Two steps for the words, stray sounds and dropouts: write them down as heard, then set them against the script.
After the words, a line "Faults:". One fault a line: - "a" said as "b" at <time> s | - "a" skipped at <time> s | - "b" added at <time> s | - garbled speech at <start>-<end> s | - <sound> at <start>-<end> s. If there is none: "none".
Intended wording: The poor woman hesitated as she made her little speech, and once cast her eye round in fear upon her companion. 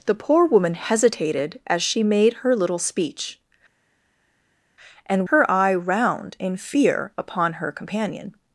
The poor woman hesitated as she made her little speech, and her eye round in fear upon her companion.
Faults:
- "once cast" skipped at 5.3 s